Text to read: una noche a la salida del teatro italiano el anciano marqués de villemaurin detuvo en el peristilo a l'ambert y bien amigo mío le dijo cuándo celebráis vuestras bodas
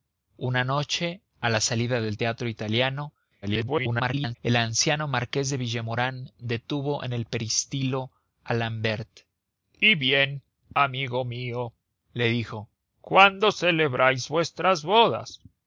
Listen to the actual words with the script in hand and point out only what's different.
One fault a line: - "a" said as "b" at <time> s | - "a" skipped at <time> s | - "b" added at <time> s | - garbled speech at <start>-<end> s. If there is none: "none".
- garbled speech at 3.4-4.4 s